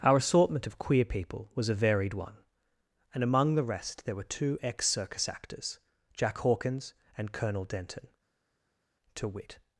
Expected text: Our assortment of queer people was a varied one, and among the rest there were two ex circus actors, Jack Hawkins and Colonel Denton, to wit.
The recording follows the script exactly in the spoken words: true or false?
true